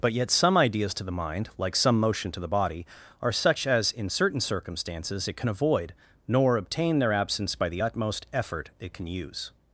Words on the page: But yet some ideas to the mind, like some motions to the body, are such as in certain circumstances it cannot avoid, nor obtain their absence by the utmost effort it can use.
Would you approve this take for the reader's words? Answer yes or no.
no